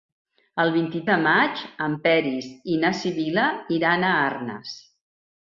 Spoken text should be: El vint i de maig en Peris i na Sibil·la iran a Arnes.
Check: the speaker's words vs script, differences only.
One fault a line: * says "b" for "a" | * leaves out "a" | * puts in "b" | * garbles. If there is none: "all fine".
all fine